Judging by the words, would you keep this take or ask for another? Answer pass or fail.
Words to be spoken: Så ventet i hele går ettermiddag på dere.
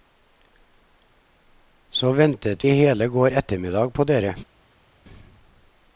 pass